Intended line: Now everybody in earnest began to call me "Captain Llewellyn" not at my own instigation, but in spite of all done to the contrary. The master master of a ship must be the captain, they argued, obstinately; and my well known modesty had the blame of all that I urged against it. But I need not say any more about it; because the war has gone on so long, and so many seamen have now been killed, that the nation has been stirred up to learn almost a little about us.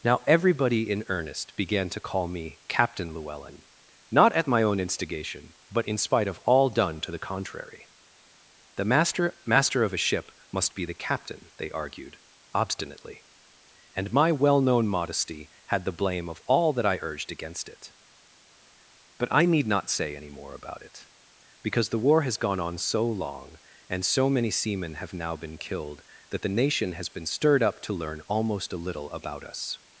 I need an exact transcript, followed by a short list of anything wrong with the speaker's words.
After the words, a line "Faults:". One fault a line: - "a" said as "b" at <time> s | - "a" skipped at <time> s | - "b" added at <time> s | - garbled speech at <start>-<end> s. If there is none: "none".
Now everybody in earnest began to call me "Captain Llewellyn" not at my own instigation, but in spite of all done to the contrary. The master master of a ship must be the captain, they argued, obstinately; and my well known modesty had the blame of all that I urged against it. But I need not say any more about it; because the war has gone on so long, and so many seamen have now been killed, that the nation has been stirred up to learn almost a little about us.
Faults:
none